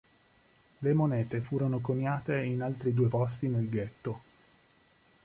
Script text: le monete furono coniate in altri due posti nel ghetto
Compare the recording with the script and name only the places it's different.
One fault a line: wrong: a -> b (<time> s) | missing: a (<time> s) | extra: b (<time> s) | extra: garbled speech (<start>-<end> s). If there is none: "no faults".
no faults